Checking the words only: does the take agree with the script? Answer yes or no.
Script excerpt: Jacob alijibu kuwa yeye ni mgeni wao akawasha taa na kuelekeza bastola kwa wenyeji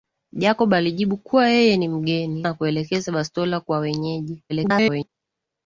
no